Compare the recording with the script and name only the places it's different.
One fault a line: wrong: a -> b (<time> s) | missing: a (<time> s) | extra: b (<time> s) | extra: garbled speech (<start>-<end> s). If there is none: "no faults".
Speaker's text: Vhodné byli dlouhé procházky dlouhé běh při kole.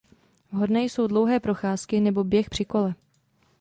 wrong: byli -> jsou (0.8 s)
wrong: dlouhé -> nebo (2.0 s)